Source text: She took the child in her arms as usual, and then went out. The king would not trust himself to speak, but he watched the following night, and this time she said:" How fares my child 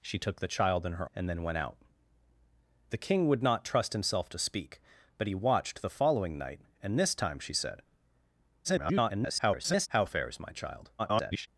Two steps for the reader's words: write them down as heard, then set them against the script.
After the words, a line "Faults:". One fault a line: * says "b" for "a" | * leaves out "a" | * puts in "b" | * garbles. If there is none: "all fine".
She took the child in her and then went out. The king would not trust himself to speak, but he watched the following night, and this time she said:" [garbled] How fares my child [garbled]
Faults:
* leaves out "arms as usual"
* garbles
* garbles